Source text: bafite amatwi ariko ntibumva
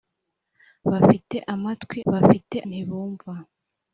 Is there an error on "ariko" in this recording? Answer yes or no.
yes